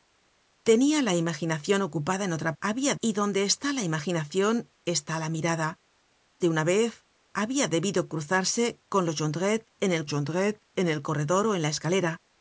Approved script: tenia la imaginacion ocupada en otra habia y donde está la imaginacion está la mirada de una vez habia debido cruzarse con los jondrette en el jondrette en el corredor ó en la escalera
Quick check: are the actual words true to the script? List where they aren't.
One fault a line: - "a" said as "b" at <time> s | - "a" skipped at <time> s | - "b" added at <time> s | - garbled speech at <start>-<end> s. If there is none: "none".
none